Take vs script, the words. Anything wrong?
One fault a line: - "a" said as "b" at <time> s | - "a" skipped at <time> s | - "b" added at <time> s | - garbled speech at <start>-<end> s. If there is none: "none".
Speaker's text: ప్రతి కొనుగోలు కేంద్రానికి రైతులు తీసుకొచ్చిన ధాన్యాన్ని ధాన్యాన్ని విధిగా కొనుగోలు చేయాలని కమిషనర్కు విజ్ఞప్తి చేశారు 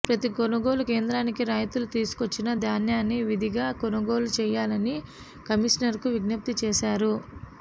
- "ధాన్యాన్ని" skipped at 3.2 s